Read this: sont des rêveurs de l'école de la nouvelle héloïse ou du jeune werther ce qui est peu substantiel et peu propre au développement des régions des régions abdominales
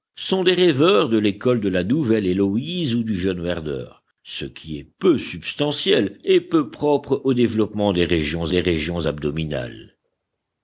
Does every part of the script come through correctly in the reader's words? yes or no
yes